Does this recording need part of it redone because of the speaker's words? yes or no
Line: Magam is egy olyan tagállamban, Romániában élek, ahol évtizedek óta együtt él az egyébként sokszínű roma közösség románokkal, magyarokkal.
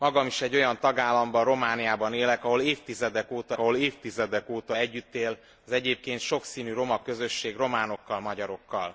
yes